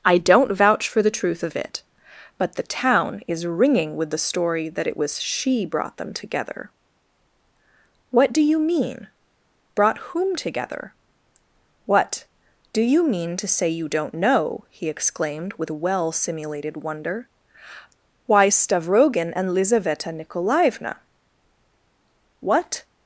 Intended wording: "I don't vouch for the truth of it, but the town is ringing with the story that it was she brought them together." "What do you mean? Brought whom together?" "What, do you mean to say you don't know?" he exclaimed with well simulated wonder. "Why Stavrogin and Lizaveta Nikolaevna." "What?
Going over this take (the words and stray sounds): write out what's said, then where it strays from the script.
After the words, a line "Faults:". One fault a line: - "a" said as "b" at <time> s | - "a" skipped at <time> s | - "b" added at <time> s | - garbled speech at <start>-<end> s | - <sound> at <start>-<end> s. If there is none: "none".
"I don't vouch for the truth of it, but the town is ringing with the story that it was she brought them together." "What do you mean? Brought whom together?" "What, do you mean to say you don't know?" he exclaimed with well simulated wonder. "Why Stavrogin and Lizaveta Nikolaevna." "What?
Faults:
none